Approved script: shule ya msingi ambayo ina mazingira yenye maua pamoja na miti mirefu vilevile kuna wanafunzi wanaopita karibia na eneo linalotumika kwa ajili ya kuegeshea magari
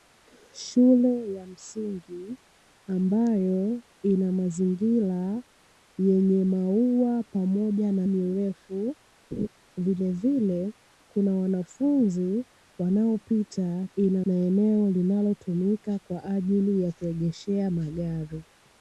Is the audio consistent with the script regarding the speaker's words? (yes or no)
no